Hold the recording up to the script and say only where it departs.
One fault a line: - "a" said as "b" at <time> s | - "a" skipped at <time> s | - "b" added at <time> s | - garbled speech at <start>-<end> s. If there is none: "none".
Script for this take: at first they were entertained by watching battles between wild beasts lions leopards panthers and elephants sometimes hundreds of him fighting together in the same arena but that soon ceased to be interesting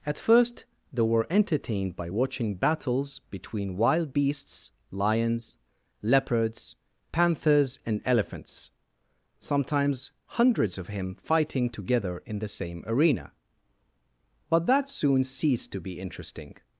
none